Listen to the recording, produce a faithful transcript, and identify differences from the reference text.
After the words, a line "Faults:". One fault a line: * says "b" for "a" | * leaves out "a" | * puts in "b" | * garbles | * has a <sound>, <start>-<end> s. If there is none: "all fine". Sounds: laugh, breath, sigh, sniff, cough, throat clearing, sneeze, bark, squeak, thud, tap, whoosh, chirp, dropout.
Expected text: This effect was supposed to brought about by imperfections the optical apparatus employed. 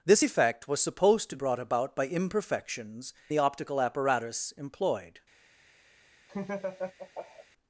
This effect was supposed to brought about by imperfections the optical apparatus employed.
Faults:
* has a laugh, 6.3-7.5 s